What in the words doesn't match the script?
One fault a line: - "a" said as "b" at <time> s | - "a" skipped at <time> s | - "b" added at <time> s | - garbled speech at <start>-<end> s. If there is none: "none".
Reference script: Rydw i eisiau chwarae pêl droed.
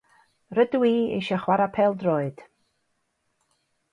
none